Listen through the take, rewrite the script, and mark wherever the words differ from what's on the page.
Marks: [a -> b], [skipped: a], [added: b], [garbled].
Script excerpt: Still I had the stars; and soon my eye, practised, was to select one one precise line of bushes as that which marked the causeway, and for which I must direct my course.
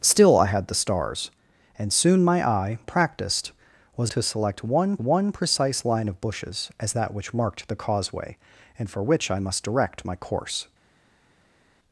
Still I had the stars; and soon my eye, practised, was to select one one precise line of bushes as that which marked the causeway, and for which I must direct my course.